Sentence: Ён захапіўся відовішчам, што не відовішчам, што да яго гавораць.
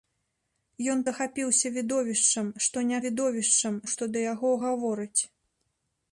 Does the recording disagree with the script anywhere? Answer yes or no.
no